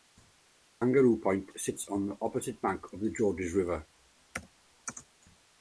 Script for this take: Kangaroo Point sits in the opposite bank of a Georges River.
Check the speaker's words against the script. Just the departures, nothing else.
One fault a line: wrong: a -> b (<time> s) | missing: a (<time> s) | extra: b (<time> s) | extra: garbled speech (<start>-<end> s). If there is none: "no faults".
wrong: in -> on (1.9 s)
wrong: a -> the (3.0 s)